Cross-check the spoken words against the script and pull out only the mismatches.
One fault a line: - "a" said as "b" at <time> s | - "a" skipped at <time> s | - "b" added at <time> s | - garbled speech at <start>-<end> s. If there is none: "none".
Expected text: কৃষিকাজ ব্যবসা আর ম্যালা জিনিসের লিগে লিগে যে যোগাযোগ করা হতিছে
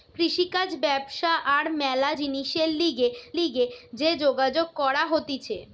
none